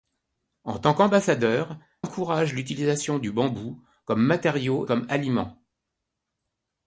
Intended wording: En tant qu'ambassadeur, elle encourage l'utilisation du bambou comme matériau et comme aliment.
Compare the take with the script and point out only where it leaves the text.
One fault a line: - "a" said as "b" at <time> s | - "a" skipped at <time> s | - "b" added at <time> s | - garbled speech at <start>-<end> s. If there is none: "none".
- "elle" skipped at 1.8 s
- "et" skipped at 4.9 s